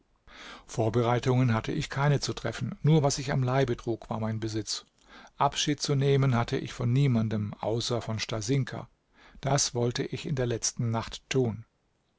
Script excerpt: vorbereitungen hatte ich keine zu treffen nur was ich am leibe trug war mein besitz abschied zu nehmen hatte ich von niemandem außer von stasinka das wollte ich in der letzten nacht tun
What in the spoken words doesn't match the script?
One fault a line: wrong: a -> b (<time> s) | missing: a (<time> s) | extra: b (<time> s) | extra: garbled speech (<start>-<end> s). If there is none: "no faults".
no faults